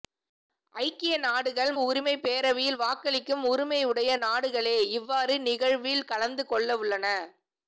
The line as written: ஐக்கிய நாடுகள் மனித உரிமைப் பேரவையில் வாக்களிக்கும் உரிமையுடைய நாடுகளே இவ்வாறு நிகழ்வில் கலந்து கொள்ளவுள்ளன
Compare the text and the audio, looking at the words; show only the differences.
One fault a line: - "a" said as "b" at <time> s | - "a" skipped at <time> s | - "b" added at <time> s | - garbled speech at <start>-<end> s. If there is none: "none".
- "மனித" skipped at 1.7 s